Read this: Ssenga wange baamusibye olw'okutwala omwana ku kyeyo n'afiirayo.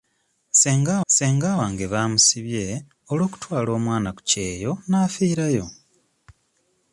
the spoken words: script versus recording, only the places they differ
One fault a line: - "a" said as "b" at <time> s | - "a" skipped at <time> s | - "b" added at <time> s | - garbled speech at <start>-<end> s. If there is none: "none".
- "ssenga" added at 1.1 s